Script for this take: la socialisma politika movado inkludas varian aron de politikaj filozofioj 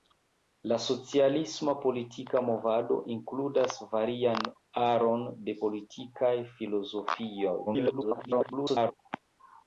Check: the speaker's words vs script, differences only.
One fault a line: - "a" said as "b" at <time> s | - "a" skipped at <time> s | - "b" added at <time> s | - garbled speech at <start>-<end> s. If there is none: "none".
- garbled speech at 7.7-8.9 s